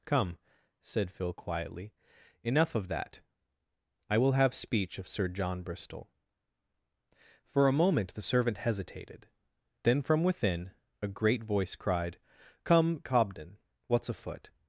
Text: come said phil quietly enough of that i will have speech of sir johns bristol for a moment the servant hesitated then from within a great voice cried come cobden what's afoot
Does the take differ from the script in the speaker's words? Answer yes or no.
yes